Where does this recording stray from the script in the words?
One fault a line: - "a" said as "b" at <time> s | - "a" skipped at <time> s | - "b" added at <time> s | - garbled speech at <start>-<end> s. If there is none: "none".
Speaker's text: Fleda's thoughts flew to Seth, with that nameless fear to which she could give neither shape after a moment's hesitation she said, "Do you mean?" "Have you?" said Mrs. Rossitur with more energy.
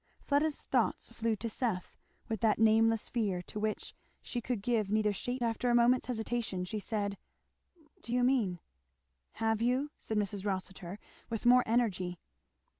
none